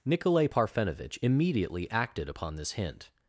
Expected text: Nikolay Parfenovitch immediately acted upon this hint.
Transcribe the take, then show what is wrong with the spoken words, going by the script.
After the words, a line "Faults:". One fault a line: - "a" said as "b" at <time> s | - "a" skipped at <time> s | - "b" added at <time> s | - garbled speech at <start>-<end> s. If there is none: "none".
Nikolay Parfenovitch immediately acted upon this hint.
Faults:
none